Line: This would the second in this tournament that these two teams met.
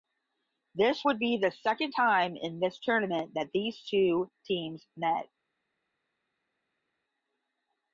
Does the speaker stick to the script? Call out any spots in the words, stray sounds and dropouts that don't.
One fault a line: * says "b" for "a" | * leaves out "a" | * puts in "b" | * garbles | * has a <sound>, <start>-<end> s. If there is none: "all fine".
* puts in "be"
* puts in "time"